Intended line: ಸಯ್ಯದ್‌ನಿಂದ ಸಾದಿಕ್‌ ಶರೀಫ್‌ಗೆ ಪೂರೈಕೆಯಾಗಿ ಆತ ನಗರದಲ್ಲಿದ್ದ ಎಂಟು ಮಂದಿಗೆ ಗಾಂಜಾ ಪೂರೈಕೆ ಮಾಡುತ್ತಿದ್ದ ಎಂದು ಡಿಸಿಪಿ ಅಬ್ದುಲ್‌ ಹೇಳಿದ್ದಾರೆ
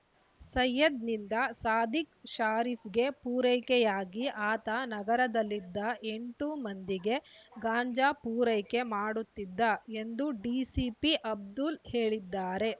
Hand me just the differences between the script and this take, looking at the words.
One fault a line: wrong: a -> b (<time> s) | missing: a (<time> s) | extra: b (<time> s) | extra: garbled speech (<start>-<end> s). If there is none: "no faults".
no faults